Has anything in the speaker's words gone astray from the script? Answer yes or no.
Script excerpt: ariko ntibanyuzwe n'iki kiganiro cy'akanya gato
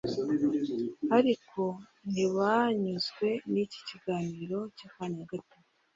no